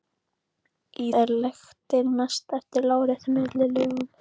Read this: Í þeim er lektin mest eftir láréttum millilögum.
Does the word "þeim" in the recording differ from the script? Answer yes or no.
yes